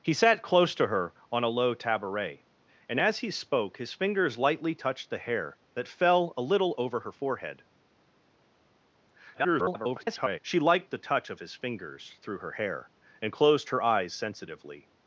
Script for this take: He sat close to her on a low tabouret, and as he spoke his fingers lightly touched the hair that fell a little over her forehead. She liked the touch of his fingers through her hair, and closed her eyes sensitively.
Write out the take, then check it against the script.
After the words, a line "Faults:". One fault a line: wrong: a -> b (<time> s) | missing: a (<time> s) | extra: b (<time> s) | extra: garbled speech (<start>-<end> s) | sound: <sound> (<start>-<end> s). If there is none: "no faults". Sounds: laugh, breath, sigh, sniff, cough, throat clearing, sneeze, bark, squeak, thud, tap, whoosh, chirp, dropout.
He sat close to her on a low tabouret, and as he spoke his fingers lightly touched the hair that fell a little over her forehead. [garbled] She liked the touch of his fingers through her hair, and closed her eyes sensitively.
Faults:
extra: garbled speech (9.3-10.4 s)